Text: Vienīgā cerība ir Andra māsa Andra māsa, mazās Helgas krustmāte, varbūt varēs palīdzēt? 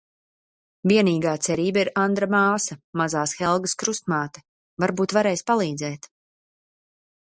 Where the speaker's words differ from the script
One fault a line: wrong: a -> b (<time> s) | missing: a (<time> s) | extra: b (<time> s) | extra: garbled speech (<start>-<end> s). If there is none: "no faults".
missing: Andra māsa (2.8 s)